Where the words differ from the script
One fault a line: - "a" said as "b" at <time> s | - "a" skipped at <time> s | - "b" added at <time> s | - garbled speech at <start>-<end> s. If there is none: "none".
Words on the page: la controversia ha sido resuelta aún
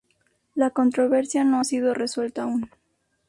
- "no" added at 1.4 s